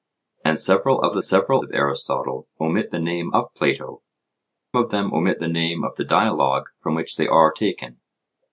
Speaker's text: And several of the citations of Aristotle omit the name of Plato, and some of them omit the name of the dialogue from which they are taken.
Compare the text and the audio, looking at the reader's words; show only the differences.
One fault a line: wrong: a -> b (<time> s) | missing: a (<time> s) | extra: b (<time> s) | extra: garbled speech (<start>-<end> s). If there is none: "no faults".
wrong: citations -> several (1.2 s)
missing: and some (4.0 s)